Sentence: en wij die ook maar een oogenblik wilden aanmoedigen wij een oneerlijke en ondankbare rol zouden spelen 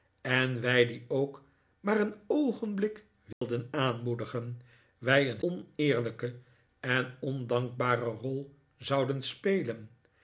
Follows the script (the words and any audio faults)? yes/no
no